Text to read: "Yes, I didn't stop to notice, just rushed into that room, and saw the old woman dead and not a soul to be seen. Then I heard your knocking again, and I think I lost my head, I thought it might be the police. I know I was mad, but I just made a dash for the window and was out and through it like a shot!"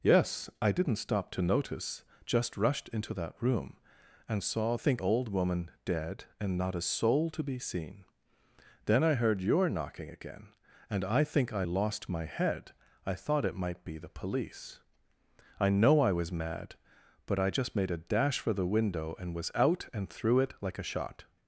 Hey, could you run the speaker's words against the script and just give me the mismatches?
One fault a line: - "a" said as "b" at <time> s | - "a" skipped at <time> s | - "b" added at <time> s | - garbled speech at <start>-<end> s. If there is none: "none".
- "the" said as "think" at 4.7 s